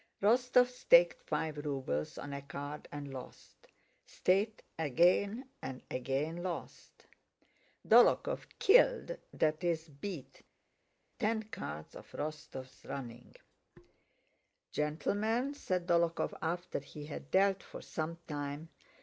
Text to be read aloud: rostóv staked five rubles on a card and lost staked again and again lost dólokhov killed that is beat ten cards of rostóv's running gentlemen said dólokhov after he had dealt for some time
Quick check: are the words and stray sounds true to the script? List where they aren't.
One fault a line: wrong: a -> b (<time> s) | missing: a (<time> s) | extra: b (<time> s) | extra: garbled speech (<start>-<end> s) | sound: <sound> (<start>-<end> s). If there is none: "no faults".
no faults